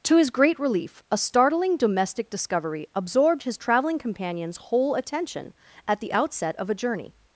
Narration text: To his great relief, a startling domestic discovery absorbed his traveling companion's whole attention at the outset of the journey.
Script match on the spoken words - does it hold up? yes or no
no